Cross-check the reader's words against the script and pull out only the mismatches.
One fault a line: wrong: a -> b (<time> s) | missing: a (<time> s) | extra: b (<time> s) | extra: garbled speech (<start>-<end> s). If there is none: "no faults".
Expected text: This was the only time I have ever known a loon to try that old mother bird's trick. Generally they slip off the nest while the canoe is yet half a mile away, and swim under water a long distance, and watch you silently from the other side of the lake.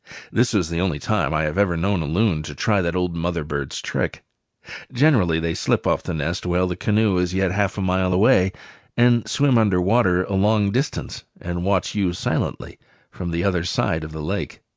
no faults